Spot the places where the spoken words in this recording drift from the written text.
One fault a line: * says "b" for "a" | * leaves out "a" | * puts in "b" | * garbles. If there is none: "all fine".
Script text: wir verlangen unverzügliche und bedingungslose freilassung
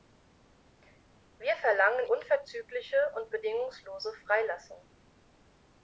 all fine